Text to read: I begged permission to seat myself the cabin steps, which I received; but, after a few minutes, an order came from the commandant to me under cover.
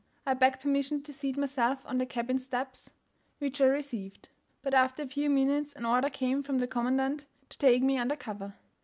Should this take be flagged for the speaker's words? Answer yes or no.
yes